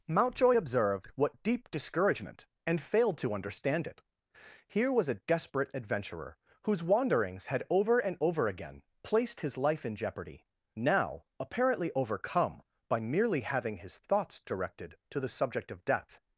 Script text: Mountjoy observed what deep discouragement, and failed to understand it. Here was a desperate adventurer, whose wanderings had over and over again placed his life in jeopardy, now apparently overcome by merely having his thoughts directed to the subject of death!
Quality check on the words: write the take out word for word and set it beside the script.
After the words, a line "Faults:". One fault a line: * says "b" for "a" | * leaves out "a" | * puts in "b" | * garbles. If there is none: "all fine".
Mountjoy observed what deep discouragement, and failed to understand it. Here was a desperate adventurer, whose wanderings had over and over again placed his life in jeopardy, now apparently overcome by merely having his thoughts directed to the subject of death!
Faults:
all fine